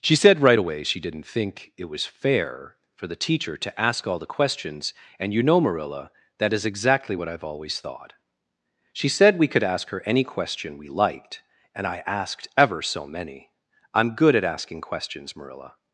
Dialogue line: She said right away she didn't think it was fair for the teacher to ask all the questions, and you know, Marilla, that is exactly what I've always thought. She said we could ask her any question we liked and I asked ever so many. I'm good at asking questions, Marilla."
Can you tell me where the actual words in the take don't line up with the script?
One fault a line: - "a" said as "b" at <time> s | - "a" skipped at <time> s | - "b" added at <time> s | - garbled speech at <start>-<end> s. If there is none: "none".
none